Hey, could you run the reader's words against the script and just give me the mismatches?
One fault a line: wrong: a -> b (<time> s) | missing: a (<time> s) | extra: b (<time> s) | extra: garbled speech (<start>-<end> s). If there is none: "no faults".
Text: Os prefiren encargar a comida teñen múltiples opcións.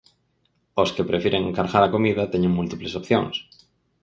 extra: que (0.9 s)